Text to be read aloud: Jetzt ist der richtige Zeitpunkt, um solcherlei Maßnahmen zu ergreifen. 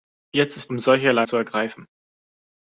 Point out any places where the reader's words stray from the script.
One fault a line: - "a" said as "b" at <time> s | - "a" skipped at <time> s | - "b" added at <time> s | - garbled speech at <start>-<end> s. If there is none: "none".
- "der richtige Zeitpunkt" skipped at 0.7 s
- "Maßnahmen" skipped at 1.3 s